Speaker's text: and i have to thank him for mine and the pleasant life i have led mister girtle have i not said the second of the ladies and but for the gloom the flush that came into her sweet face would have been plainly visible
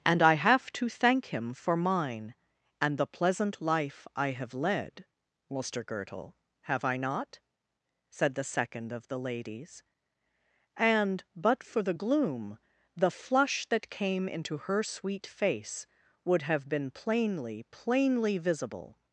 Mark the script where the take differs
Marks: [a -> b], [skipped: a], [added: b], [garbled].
and i have to thank him for mine and the pleasant life i have led mister girtle have i not said the second of the ladies and but for the gloom the flush that came into her sweet face would have been plainly [added: plainly] visible